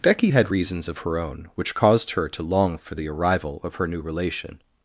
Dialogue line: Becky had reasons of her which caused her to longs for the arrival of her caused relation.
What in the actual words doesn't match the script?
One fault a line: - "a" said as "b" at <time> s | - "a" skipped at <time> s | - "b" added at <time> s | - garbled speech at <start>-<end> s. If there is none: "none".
- "own" added at 1.2 s
- "longs" said as "long" at 2.4 s
- "caused" said as "new" at 3.9 s